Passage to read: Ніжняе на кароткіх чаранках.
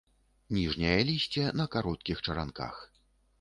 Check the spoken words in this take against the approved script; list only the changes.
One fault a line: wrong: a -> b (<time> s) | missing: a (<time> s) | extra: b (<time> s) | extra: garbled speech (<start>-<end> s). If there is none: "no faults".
extra: лісце (1.1 s)